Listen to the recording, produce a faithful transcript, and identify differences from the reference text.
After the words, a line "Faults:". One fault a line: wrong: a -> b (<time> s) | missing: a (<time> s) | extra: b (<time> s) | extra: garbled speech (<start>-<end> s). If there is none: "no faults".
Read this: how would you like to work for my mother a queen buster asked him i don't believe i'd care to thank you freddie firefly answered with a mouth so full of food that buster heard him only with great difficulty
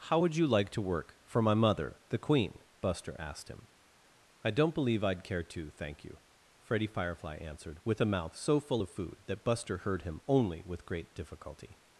how would you like to work for my mother the queen buster asked him i don't believe i'd care to thank you freddie firefly answered with a mouth so full of food that buster heard him only with great difficulty
Faults:
wrong: a -> the (2.1 s)